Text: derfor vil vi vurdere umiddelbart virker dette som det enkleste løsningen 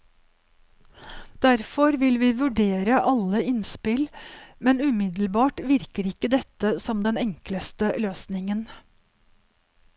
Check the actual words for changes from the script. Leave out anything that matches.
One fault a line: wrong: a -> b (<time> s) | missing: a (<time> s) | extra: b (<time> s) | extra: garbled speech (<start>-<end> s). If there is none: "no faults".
extra: alle innspill men (3.1 s)
extra: ikke (6.1 s)
wrong: det -> den (7.1 s)